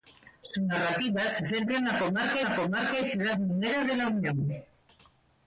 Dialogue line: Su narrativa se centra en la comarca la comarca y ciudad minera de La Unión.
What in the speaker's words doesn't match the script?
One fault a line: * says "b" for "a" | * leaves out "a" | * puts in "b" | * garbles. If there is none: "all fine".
all fine